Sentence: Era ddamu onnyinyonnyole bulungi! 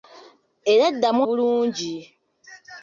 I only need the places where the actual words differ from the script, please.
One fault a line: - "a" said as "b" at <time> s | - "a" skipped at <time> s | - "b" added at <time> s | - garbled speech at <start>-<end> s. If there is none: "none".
- "onnyinyonnyole" skipped at 1.2 s